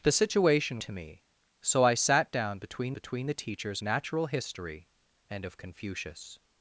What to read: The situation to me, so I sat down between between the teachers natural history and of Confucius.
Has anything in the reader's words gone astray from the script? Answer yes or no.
no